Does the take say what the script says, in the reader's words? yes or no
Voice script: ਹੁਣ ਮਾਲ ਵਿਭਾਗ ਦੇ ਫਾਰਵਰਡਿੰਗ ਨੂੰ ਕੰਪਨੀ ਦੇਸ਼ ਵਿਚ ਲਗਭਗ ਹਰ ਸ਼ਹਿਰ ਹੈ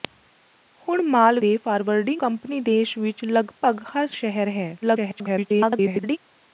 no